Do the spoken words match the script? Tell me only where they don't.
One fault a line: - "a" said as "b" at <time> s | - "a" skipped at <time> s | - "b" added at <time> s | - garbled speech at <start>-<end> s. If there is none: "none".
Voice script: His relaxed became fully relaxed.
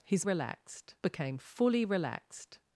none